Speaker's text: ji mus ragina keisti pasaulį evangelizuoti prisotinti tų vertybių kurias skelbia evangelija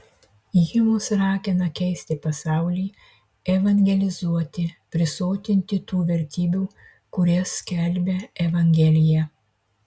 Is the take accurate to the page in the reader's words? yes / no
yes